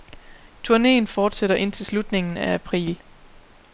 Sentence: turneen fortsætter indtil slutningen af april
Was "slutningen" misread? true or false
false